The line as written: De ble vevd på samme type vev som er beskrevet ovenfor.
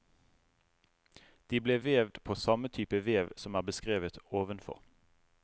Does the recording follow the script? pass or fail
pass